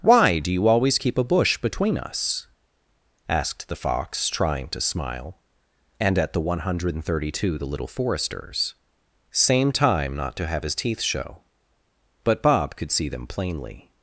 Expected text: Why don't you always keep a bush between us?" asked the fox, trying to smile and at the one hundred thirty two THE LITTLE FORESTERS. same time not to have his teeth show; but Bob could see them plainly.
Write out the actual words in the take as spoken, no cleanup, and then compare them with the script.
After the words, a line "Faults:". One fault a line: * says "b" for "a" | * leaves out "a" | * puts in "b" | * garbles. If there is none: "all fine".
Why do you always keep a bush between us?" asked the fox, trying to smile and at the one hundred thirty two THE LITTLE FORESTERS. same time not to have his teeth show; but Bob could see them plainly.
Faults:
* says "do" for "don't"